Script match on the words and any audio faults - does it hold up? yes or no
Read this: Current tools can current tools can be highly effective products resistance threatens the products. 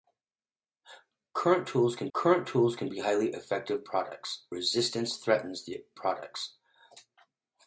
yes